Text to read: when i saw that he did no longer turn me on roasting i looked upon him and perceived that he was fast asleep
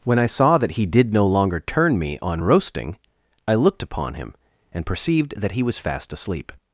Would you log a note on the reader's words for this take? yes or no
no